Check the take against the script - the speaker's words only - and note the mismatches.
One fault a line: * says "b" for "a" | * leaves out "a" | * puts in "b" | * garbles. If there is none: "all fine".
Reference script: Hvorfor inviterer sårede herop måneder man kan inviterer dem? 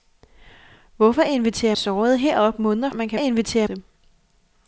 all fine